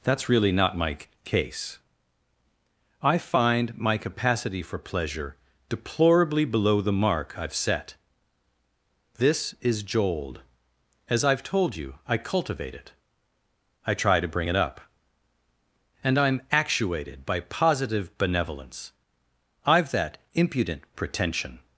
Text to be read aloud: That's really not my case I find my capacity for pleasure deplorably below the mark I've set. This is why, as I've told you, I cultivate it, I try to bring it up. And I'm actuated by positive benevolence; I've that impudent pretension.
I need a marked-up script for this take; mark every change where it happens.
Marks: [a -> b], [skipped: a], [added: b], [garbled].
That's really not my case I find my capacity for pleasure deplorably below the mark I've set. This is [why, -> jold] as I've told you, I cultivate it, I try to bring it up. And I'm actuated by positive benevolence; I've that impudent pretension.